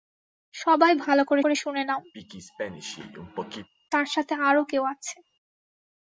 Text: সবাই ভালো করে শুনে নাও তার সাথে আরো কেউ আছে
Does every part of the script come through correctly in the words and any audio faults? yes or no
no